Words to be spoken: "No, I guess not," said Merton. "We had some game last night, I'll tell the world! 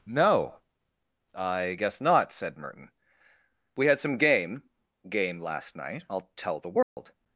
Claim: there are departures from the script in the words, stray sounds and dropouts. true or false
true